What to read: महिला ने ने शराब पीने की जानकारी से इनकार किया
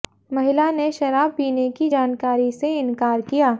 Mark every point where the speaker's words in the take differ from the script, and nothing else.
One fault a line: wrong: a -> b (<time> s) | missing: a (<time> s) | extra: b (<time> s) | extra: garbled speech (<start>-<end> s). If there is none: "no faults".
missing: ने (0.9 s)